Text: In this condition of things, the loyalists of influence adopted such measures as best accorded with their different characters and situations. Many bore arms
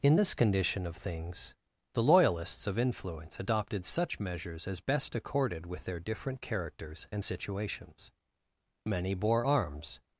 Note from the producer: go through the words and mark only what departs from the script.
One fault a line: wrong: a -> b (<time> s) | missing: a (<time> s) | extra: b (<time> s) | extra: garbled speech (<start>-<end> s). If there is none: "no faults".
no faults